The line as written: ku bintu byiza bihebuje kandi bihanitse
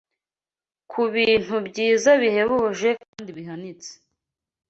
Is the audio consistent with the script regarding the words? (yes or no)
yes